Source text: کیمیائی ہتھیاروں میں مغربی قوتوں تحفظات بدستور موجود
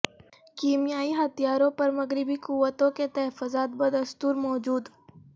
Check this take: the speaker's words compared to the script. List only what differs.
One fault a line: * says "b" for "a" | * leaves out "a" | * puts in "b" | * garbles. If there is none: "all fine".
* says "پر" for "میں"
* puts in "کے"